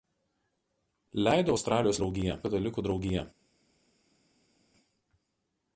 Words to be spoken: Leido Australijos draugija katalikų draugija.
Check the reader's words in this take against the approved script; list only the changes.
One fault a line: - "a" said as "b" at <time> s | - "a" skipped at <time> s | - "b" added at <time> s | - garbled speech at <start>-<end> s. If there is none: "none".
none